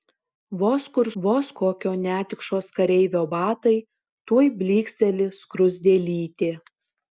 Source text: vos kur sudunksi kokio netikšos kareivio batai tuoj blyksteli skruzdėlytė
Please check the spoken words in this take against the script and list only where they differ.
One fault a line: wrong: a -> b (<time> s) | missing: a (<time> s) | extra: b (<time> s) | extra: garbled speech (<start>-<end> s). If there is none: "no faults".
wrong: sudunksi -> vos (1.2 s)